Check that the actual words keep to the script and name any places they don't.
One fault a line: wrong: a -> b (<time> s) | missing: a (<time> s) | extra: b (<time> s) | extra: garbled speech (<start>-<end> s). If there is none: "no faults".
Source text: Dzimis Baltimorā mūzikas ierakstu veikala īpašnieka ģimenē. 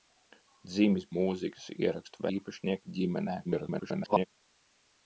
missing: Baltimorā (1.1 s)
missing: veikala (2.3 s)
extra: garbled speech (3.4-4.3 s)